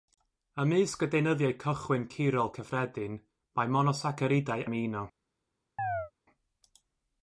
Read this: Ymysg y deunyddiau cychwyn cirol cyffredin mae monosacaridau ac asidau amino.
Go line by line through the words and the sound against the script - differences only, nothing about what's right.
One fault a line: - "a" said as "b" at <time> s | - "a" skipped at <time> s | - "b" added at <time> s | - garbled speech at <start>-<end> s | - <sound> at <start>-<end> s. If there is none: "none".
- "ac asidau" skipped at 4.7 s
- chirp at 5.8-6.1 s